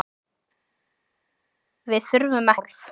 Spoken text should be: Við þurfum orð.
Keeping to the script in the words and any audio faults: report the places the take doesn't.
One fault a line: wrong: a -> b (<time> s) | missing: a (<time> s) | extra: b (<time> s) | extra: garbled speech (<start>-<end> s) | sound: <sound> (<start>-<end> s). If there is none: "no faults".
no faults